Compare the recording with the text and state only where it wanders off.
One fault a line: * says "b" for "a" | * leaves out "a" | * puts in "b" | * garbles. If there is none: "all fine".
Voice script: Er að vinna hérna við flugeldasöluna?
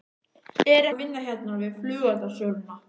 all fine